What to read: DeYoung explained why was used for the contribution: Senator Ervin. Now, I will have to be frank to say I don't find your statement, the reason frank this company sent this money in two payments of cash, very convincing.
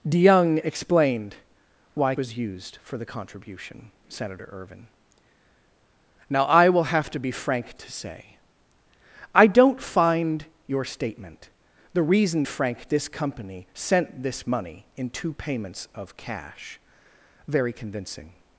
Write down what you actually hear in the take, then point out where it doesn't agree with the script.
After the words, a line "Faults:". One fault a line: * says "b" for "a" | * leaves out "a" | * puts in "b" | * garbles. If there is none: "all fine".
DeYoung explained why was used for the contribution: Senator Ervin. Now, I will have to be frank to say I don't find your statement, the reason frank this company sent this money in two payments of cash, very convincing.
Faults:
all fine